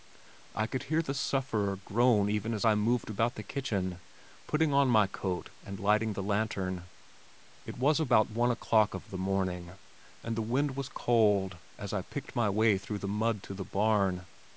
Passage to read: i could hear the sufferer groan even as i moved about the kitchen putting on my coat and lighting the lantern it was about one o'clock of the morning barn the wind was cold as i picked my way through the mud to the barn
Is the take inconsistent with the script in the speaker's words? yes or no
yes